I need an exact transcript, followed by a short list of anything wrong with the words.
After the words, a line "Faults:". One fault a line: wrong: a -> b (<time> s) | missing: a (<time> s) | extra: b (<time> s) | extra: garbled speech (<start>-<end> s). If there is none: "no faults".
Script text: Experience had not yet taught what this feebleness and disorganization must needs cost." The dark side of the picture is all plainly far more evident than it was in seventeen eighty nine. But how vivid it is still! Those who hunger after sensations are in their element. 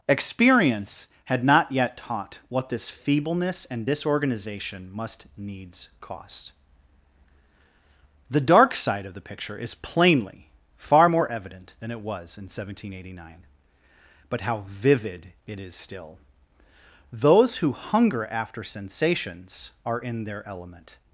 Experience had not yet taught what this feebleness and disorganization must needs cost." The dark side of the picture is plainly far more evident than it was in seventeen eighty nine. But how vivid it is still! Those who hunger after sensations are in their element.
Faults:
missing: all (9.7 s)